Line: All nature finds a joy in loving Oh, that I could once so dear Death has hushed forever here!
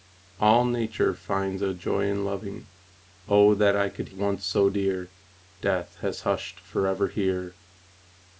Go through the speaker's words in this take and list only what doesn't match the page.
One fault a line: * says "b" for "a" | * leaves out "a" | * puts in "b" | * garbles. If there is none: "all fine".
all fine